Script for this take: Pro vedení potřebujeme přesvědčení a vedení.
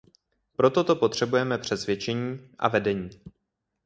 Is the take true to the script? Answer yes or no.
no